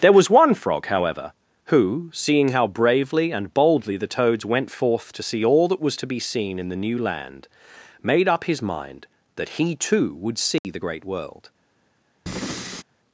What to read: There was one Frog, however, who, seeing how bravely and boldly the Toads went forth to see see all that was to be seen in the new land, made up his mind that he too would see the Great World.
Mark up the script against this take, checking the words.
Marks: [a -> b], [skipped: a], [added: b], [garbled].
There was one Frog, however, who, seeing how bravely and boldly the Toads went forth to see [skipped: see] all that was to be seen in the new land, made up his mind that he too would see the Great World.